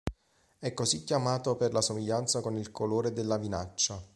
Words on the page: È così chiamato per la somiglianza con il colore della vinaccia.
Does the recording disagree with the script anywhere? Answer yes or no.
no